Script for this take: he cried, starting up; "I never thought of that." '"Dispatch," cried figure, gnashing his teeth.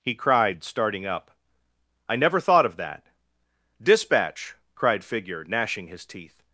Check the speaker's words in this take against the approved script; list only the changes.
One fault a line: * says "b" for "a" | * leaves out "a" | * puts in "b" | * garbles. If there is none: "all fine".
all fine